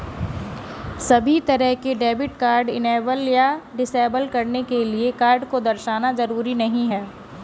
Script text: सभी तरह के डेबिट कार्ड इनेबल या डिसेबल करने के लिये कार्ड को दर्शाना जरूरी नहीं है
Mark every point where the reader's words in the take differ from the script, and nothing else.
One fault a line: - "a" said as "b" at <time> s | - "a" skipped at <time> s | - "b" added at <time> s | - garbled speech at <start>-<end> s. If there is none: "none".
none